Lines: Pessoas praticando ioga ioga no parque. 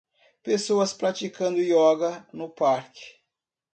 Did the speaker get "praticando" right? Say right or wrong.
right